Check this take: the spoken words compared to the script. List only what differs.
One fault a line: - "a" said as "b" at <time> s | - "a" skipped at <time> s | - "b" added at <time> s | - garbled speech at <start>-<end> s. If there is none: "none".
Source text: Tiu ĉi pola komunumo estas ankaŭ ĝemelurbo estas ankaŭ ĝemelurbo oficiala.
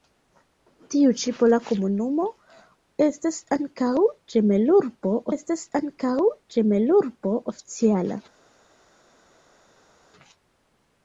none